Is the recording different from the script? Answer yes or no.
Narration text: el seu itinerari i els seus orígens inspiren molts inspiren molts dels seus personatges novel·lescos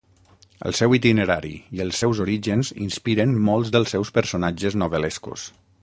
yes